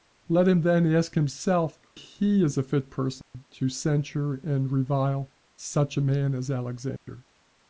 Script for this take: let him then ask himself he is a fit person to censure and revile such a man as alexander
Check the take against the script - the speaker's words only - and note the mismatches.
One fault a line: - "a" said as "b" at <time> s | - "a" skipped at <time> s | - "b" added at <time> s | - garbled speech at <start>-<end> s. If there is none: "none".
none